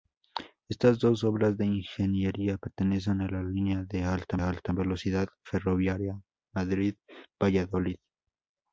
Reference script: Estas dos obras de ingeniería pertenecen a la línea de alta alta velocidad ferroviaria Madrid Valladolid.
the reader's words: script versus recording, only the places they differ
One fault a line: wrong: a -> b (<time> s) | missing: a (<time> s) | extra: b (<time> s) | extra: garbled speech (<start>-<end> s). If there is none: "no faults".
no faults